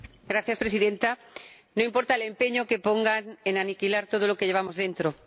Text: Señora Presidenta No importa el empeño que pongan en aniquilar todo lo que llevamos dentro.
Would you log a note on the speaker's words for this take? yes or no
no